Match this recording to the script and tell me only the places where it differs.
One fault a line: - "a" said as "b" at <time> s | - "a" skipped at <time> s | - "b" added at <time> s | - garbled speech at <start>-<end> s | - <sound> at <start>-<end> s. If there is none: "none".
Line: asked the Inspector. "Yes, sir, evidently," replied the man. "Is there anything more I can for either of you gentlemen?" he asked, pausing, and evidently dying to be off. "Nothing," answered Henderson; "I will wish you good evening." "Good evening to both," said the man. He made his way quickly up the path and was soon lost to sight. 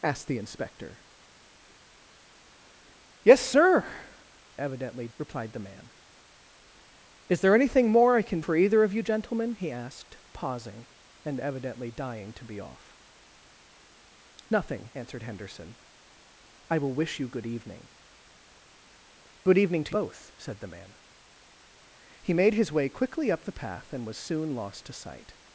none